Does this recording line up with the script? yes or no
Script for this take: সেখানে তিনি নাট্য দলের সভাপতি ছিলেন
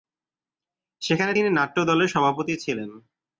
yes